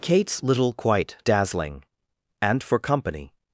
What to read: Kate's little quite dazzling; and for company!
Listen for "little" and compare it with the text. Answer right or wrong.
right